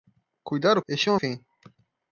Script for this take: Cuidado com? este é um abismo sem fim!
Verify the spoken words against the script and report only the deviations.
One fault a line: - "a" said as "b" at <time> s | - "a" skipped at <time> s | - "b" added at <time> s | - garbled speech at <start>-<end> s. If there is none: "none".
- "com" skipped at 0.8 s
- "abismo sem" skipped at 1.2 s